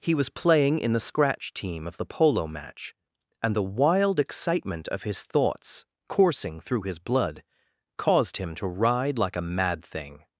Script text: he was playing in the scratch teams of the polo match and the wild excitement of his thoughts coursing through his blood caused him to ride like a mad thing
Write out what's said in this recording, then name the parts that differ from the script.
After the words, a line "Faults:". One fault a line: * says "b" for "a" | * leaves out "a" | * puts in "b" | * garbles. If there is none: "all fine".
he was playing in the scratch team of the polo match and the wild excitement of his thoughts coursing through his blood caused him to ride like a mad thing
Faults:
* says "team" for "teams"